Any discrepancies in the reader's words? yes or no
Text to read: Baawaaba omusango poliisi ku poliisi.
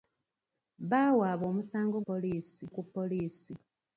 no